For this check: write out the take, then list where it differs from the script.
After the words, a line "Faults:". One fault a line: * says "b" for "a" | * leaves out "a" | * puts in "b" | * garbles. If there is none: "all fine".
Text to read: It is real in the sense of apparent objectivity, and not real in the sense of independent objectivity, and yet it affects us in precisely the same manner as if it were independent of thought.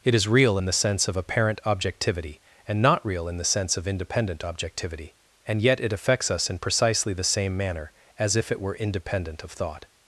It is real in the sense of apparent objectivity, and not real in the sense of independent objectivity, and yet it affects us in precisely the same manner as if it were independent of thought.
Faults:
all fine